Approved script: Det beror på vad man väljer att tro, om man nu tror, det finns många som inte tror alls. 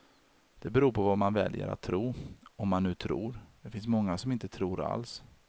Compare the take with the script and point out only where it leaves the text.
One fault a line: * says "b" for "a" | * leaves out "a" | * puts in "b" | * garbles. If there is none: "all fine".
all fine